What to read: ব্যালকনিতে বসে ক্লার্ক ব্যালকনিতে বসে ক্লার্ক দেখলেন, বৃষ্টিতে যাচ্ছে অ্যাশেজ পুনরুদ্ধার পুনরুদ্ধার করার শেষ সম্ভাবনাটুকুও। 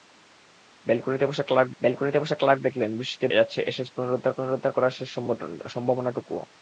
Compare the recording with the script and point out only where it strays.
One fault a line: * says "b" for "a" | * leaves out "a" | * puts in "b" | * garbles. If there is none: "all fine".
all fine